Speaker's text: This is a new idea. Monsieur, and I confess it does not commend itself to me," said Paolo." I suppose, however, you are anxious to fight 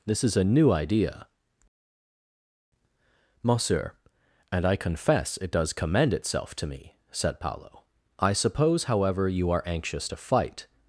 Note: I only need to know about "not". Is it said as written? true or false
false